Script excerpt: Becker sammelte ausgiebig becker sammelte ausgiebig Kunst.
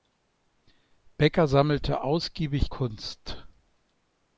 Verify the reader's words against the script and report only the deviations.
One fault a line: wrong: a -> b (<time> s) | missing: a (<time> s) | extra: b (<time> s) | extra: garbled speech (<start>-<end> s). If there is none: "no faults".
missing: becker sammelte ausgiebig (2.7 s)